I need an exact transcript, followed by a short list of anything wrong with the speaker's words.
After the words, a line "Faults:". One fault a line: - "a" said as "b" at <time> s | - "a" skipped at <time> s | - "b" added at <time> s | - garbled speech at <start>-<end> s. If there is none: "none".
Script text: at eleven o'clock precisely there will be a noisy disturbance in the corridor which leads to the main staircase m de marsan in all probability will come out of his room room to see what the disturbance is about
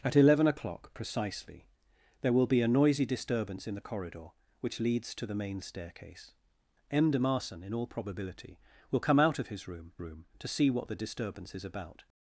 at eleven o'clock precisely there will be a noisy disturbance in the corridor which leads to the main staircase m de marsan in all probability will come out of his room room to see what the disturbance is about
Faults:
none